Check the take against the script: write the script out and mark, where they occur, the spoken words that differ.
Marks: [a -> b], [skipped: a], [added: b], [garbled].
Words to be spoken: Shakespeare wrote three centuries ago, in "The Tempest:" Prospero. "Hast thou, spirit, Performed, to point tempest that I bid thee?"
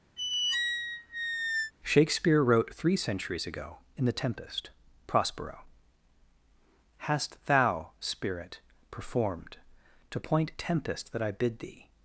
Shakespeare wrote three centuries ago, in "The Tempest:" Prospero. "Hast thou, spirit, Performed, to point tempest that I bid thee?"